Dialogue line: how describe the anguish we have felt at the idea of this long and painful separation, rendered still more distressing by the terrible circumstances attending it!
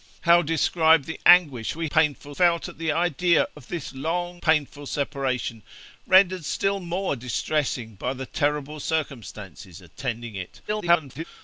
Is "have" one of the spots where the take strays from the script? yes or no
yes